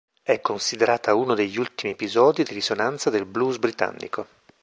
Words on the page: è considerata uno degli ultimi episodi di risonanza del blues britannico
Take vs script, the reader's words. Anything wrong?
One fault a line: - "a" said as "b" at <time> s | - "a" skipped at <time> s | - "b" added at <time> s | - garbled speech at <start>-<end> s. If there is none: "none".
none